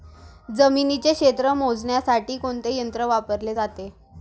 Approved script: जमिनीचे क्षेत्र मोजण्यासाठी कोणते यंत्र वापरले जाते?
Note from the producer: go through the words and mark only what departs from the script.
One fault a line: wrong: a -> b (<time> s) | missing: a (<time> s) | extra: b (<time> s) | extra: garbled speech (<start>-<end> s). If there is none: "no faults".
no faults